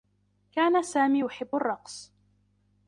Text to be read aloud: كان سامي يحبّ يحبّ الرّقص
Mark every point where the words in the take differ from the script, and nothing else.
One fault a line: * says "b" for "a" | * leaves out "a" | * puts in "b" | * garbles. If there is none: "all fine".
* leaves out "يحبّ"